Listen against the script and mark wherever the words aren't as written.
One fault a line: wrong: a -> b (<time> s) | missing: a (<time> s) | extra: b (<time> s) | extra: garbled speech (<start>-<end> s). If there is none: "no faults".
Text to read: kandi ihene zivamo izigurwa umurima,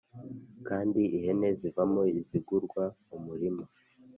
no faults